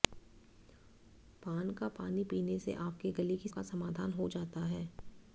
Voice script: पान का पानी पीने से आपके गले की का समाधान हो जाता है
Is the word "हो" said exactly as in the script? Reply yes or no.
yes